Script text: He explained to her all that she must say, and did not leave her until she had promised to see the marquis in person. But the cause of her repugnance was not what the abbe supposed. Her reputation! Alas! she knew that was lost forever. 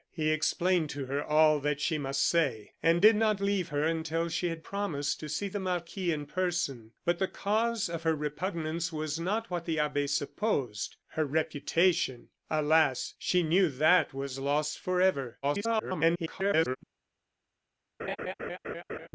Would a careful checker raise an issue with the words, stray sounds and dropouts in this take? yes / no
yes